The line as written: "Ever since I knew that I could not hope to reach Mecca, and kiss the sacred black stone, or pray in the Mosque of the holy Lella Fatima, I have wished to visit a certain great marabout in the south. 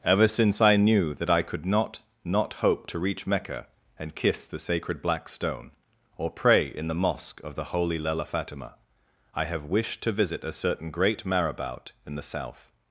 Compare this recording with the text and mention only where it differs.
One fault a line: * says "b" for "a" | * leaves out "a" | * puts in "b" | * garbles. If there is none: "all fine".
* puts in "not"